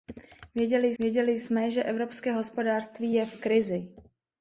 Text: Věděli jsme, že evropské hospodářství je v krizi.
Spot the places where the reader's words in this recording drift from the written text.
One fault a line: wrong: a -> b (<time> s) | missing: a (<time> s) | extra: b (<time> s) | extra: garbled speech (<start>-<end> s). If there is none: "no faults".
extra: věděli (1.0 s)